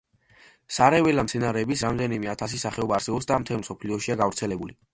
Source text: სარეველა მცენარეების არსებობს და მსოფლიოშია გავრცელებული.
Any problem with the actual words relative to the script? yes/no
yes